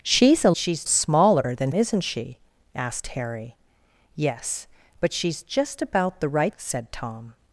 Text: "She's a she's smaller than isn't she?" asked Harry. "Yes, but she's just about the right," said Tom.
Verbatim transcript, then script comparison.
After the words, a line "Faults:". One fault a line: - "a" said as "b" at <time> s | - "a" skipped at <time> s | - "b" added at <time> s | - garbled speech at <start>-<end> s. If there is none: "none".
"She's a she's smaller than isn't she?" asked Harry. "Yes, but she's just about the right," said Tom.
Faults:
none